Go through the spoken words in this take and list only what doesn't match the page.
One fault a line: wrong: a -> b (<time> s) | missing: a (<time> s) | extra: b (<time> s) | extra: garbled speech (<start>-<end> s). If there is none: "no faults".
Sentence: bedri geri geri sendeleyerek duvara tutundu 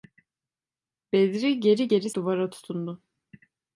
missing: sendeleyerek (2.1 s)